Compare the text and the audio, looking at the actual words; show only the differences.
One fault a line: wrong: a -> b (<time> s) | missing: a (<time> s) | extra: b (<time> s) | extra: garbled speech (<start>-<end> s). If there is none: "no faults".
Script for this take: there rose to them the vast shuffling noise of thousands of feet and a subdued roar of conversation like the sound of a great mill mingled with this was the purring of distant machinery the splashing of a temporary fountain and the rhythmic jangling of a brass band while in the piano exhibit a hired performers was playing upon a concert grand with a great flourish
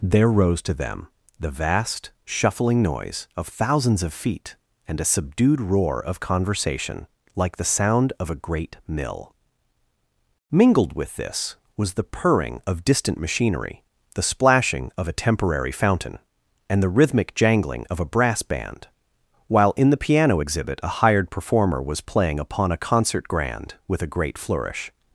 wrong: performers -> performer (21.3 s)